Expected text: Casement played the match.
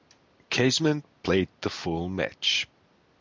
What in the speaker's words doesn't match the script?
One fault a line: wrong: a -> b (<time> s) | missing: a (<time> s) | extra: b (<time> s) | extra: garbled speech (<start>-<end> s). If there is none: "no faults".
extra: full (1.7 s)